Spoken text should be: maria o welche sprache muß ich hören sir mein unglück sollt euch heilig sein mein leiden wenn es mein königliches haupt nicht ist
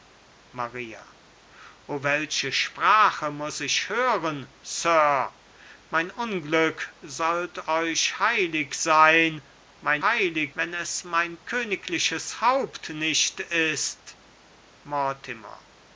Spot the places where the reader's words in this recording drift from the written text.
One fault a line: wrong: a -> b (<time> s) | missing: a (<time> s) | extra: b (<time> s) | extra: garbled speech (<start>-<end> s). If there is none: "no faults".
wrong: leiden -> heilig (10.0 s)